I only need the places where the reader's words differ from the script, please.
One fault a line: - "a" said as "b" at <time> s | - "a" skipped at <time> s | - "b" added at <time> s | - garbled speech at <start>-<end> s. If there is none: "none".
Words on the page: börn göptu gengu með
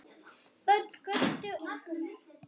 none